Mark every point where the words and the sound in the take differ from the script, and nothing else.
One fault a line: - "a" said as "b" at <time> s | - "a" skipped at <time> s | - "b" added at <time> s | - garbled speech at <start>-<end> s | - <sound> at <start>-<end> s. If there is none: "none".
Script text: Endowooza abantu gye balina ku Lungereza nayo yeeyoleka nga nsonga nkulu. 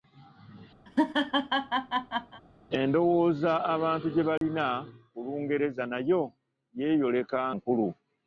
- laugh at 0.9-2.4 s
- dropout at 4.4-4.4 s
- "nga nsonga" skipped at 7.4 s